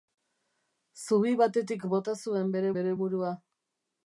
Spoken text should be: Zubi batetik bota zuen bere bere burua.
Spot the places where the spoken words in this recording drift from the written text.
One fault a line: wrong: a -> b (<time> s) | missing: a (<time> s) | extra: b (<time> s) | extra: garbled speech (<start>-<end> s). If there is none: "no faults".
no faults